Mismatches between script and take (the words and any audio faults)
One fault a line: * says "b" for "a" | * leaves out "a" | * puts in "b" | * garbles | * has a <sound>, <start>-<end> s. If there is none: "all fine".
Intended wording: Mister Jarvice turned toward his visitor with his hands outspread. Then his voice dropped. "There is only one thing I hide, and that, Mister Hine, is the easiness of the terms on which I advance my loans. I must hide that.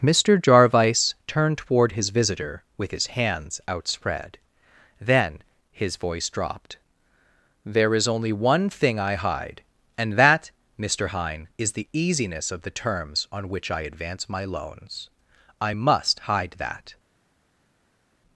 all fine